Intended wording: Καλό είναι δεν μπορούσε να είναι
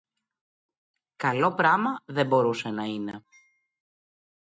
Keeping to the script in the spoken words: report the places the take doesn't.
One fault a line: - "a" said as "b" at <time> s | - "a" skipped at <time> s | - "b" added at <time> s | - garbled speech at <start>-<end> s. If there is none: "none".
- "είναι" said as "πράμα" at 1.5 s